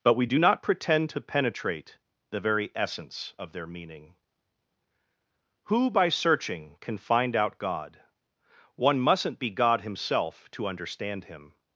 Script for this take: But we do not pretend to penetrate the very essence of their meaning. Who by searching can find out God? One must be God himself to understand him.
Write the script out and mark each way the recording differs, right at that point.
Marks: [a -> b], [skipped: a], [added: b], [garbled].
But we do not pretend to penetrate the very essence of their meaning. Who by searching can find out God? One [must -> mustn't] be God himself to understand him.